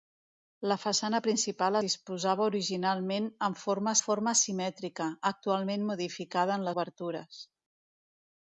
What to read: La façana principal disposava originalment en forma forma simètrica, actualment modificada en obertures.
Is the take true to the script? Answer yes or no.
yes